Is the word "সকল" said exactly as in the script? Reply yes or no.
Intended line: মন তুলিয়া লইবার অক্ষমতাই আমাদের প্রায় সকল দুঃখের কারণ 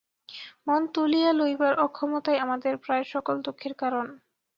yes